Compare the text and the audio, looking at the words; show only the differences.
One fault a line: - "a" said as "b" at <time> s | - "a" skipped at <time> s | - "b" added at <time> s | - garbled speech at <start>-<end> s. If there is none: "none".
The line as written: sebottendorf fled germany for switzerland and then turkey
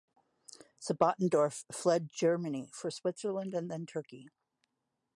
none